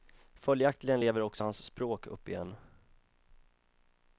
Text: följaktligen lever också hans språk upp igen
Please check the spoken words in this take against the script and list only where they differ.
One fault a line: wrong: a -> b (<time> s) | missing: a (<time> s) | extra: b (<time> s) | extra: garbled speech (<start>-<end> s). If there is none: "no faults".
no faults